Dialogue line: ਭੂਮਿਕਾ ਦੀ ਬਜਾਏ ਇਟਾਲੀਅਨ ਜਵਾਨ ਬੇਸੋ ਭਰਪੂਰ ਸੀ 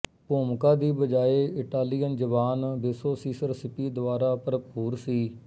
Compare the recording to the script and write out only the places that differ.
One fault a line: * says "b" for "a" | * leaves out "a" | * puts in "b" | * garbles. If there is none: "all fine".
* puts in "ਸੀਸਰ ਸਿਪੀ ਦੁਆਰਾ"